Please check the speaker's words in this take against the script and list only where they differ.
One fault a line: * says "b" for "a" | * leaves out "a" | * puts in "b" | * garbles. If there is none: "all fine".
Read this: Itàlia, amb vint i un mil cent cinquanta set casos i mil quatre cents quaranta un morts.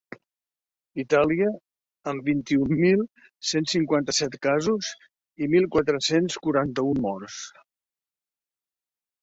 all fine